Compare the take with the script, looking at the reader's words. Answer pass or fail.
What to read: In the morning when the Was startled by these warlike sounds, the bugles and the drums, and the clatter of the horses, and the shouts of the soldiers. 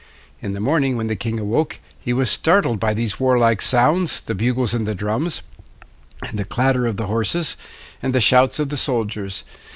fail